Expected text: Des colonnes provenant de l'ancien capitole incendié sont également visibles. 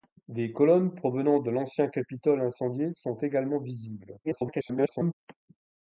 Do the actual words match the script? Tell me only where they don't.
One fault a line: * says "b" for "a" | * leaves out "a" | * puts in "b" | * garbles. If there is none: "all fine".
* garbles